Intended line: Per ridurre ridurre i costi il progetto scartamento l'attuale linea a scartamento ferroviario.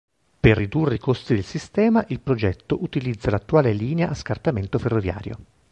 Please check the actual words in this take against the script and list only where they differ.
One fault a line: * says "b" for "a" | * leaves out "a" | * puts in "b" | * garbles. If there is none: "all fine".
* leaves out "ridurre"
* puts in "del sistema"
* says "utilizza" for "scartamento"